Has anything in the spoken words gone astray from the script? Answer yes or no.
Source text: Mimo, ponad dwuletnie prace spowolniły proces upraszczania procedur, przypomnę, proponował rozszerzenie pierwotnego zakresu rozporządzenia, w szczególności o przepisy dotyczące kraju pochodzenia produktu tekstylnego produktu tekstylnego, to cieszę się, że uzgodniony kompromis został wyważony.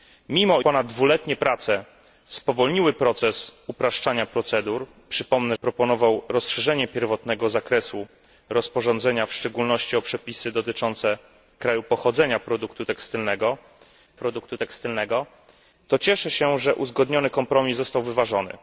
no